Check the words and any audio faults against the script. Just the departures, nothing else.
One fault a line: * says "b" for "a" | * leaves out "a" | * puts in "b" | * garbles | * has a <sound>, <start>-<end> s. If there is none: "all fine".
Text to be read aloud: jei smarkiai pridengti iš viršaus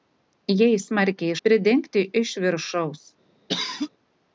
* has a cough, 3.5-3.9 s